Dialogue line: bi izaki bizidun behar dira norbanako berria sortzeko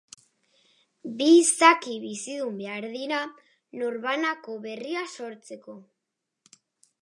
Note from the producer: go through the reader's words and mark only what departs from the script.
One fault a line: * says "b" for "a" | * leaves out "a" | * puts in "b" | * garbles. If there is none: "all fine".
all fine